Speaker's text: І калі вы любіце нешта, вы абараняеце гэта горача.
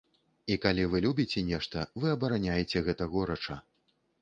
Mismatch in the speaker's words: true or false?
false